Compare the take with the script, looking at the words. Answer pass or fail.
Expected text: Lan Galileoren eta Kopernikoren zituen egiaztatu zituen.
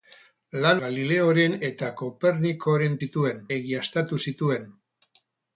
pass